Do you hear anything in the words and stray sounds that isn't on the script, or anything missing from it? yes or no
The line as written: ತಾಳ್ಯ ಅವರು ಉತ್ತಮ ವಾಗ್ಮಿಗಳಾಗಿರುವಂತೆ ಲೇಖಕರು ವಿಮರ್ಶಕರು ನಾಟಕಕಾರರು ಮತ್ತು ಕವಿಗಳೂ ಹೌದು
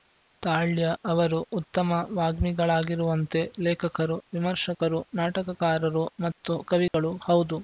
yes